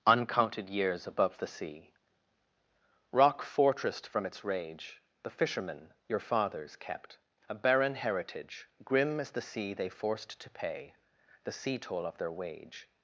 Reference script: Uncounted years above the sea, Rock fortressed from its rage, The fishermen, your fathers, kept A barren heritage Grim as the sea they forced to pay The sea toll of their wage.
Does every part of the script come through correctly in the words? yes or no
yes